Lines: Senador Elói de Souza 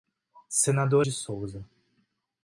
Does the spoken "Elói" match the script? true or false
false